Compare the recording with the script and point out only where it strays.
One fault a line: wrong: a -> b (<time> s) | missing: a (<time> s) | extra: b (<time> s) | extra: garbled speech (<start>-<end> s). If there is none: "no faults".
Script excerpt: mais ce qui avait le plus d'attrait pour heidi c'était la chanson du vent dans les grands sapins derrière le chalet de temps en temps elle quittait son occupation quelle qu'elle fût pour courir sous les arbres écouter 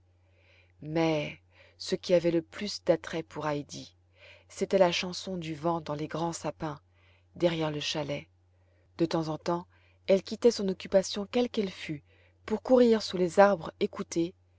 no faults